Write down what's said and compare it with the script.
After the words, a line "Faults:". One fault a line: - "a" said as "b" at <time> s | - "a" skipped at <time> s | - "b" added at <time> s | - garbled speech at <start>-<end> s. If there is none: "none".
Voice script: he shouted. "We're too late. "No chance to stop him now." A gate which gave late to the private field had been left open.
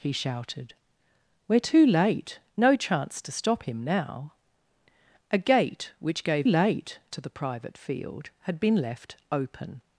he shouted. "We're too late. "No chance to stop him now." A gate which gave late to the private field had been left open.
Faults:
none